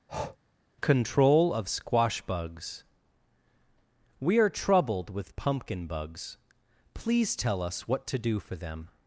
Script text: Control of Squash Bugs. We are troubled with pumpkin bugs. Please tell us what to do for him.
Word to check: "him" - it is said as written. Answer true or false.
false